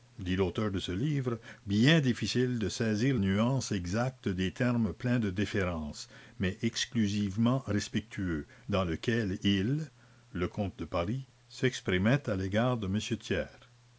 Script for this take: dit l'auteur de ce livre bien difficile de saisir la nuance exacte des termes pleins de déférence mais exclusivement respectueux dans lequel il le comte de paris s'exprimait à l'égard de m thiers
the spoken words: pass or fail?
fail